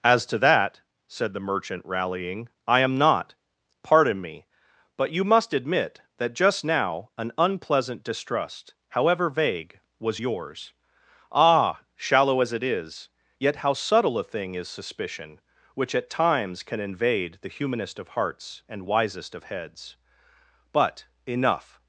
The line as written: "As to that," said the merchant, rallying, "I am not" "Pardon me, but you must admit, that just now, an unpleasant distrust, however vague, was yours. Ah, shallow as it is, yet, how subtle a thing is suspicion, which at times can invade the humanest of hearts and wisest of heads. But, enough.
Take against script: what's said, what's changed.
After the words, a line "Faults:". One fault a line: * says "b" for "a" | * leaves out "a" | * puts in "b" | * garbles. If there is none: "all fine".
"As to that," said the merchant, rallying, "I am not" "Pardon me, but you must admit, that just now, an unpleasant distrust, however vague, was yours. Ah, shallow as it is, yet, how subtle a thing is suspicion, which at times can invade the humanest of hearts and wisest of heads. But, enough.
Faults:
all fine